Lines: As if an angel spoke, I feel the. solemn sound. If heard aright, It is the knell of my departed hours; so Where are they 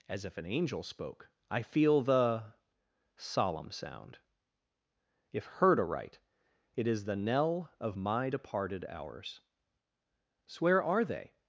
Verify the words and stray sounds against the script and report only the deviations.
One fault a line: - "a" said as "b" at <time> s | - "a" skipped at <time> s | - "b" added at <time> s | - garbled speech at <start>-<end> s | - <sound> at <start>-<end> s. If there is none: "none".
none